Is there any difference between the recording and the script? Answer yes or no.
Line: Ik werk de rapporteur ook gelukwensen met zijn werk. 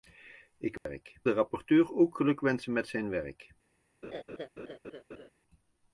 no